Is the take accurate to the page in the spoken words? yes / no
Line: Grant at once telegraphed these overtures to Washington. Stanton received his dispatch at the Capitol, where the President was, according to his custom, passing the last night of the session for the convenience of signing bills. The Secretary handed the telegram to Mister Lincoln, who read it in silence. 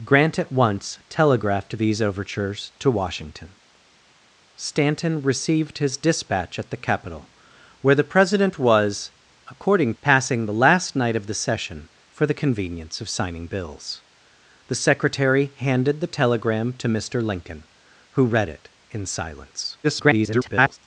no